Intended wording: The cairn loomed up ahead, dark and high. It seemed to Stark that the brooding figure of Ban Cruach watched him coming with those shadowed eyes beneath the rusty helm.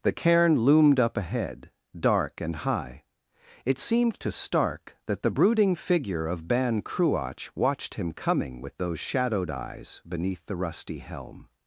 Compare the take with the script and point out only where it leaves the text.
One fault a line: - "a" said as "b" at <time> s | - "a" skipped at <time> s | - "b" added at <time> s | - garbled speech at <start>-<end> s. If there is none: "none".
none